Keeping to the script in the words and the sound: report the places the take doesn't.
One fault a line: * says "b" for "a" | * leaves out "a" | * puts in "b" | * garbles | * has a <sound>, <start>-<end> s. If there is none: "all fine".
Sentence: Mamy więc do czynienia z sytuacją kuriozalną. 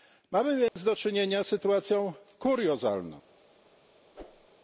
* has a dropout, 0.7-0.8 s
* has a whoosh, 4.1-4.5 s